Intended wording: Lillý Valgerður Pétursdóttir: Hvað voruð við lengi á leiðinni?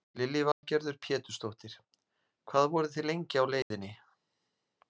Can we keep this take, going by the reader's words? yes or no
no